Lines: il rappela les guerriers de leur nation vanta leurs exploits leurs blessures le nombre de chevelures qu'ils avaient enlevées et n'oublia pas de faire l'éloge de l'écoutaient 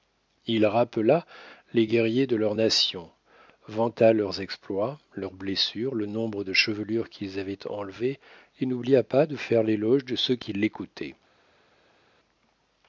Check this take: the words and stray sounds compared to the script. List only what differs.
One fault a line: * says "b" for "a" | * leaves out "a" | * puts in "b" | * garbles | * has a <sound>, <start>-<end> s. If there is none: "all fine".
* puts in "ceux qui"